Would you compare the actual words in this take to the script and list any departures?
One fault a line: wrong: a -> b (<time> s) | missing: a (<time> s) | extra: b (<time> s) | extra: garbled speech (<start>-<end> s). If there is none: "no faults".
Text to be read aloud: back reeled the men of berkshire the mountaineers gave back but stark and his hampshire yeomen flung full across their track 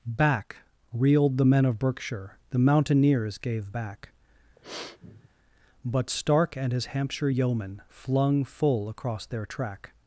no faults